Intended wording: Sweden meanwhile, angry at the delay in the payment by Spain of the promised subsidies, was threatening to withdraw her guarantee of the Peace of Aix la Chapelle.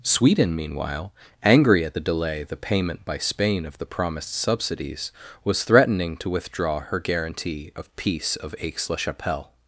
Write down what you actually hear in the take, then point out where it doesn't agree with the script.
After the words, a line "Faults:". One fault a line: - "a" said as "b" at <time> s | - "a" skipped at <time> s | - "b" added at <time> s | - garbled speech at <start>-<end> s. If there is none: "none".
Sweden meanwhile, angry at the delay the payment by Spain of the promised subsidies, was threatening to withdraw her guarantee of Peace of Aix la Chapelle.
Faults:
- "in" skipped at 2.4 s
- "the" skipped at 7.9 s